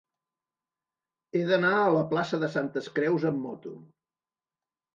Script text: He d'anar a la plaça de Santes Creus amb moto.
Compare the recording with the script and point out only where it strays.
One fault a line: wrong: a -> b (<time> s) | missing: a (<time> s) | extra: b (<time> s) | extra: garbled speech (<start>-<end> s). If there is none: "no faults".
no faults